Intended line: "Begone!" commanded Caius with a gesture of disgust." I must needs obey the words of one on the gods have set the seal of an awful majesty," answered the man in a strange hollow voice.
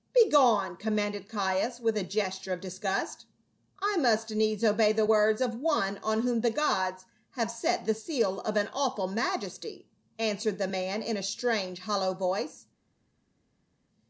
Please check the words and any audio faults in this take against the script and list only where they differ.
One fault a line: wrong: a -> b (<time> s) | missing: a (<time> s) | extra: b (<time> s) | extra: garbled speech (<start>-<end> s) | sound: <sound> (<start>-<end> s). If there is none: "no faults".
extra: whom (6.2 s)